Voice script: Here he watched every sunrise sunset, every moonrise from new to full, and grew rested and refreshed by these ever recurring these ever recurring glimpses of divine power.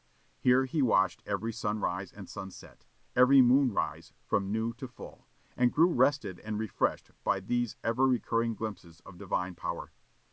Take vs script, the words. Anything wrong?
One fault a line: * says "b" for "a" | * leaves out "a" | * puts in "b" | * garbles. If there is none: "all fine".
* puts in "and"
* leaves out "these ever recurring"